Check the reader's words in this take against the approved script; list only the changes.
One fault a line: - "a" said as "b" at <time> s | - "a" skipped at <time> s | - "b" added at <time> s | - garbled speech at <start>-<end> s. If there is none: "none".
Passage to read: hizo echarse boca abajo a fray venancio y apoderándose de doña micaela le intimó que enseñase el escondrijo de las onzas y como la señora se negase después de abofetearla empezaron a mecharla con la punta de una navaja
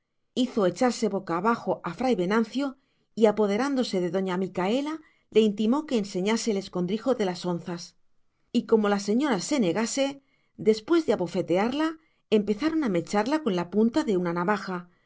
none